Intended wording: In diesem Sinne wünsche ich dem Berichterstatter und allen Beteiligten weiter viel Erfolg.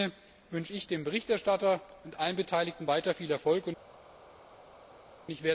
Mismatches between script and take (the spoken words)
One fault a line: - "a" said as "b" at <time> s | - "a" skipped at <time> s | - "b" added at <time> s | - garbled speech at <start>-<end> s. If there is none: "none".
none